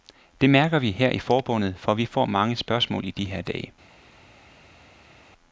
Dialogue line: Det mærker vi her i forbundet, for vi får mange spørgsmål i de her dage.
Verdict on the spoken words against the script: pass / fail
pass